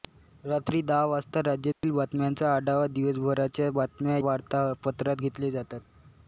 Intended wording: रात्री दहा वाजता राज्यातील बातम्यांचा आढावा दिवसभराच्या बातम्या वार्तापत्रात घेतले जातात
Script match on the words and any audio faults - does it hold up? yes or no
no